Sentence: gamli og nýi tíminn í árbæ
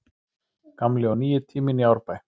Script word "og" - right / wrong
right